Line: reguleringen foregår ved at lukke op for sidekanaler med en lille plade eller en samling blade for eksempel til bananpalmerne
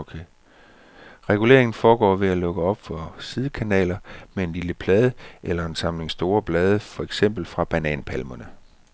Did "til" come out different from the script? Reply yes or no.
yes